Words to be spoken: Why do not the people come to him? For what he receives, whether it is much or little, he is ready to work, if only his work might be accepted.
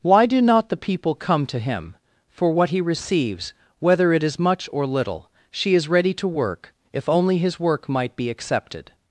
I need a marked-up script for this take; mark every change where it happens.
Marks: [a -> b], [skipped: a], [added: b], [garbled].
Why do not the people come to him? For what he receives, whether it is much or little, [he -> she] is ready to work, if only his work might be accepted.